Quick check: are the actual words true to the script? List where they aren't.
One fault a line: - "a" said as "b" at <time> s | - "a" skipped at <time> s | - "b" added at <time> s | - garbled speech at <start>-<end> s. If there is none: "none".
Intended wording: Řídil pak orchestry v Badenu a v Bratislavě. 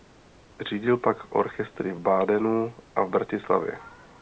none